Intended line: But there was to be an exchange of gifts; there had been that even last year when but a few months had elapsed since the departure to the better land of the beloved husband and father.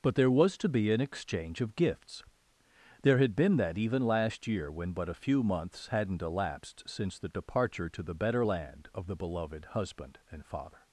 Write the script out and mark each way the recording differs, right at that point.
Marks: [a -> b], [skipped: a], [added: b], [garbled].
But there was to be an exchange of gifts; there had been that even last year when but a few months [had -> hadn't] elapsed since the departure to the better land of the beloved husband and father.